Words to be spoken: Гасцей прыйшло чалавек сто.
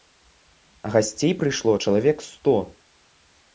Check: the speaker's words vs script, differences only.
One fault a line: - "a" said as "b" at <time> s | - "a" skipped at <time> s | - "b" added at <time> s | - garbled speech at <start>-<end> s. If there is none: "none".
none